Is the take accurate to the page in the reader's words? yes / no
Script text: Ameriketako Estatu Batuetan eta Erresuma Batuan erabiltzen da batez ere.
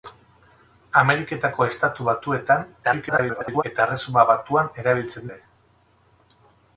no